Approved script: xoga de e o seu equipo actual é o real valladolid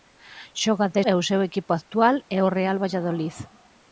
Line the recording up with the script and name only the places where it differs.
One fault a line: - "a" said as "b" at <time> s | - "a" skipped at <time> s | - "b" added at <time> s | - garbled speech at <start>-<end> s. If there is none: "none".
none